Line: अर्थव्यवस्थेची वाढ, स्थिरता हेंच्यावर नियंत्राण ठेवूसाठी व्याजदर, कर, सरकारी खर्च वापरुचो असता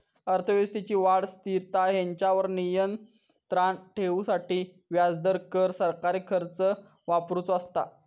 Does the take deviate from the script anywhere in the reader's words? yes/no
no